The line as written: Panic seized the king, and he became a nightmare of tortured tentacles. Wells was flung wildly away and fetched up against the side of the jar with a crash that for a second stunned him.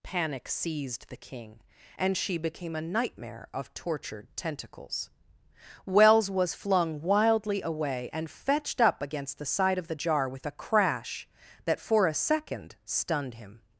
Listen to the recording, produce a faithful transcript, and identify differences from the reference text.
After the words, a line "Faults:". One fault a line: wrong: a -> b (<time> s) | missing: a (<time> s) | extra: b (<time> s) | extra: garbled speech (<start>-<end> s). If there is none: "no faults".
Panic seized the king, and she became a nightmare of tortured tentacles. Wells was flung wildly away and fetched up against the side of the jar with a crash that for a second stunned him.
Faults:
wrong: he -> she (2.2 s)